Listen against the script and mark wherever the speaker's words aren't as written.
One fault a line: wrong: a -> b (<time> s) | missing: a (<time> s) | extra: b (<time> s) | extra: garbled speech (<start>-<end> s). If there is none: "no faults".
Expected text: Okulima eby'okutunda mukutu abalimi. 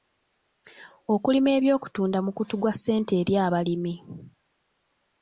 extra: gwa ssente eri (2.6 s)